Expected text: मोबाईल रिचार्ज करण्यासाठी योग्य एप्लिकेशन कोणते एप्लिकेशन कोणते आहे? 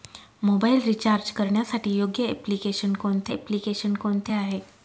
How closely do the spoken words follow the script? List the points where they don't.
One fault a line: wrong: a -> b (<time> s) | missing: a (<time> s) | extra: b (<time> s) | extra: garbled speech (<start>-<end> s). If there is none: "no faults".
no faults